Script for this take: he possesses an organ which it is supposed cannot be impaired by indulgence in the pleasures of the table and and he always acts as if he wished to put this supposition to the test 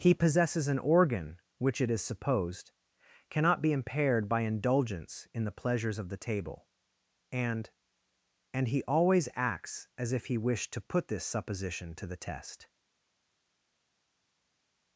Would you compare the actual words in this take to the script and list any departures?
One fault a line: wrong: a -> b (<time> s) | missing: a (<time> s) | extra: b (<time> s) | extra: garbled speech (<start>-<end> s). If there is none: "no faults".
no faults